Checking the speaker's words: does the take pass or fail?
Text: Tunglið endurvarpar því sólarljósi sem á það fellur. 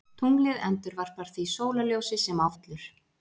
fail